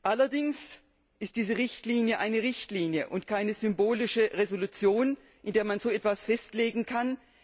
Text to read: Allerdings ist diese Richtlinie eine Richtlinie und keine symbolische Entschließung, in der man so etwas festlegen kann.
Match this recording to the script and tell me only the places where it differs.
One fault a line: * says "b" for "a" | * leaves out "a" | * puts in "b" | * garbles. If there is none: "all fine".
all fine